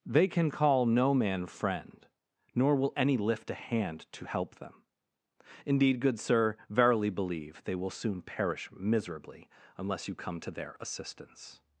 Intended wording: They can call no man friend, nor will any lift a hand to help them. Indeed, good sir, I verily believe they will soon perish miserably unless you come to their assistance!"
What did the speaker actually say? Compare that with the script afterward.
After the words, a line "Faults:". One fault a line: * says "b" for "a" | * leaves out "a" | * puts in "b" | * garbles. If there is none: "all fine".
They can call no man friend, nor will any lift a hand to help them. Indeed, good sir, verily believe they will soon perish miserably unless you come to their assistance!"
Faults:
* leaves out "I"